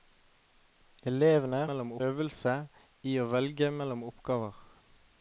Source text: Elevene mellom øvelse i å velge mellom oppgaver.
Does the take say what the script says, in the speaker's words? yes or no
yes